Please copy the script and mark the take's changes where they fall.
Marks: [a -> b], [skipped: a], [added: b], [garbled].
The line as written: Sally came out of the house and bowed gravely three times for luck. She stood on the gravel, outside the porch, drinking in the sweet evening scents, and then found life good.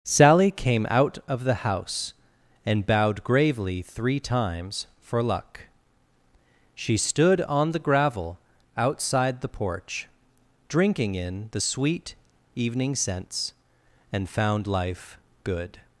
Sally came out of the house and bowed gravely three times for luck. She stood on the gravel, outside the porch, drinking in the sweet evening scents, and [skipped: then] found life good.